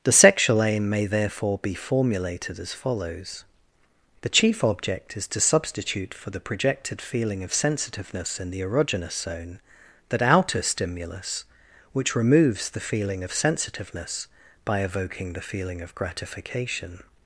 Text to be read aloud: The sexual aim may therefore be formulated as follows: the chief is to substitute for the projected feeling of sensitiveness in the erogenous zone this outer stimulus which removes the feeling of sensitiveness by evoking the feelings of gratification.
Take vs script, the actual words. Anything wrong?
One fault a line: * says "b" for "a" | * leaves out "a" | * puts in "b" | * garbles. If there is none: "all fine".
* puts in "object"
* says "that" for "this"
* says "feeling" for "feelings"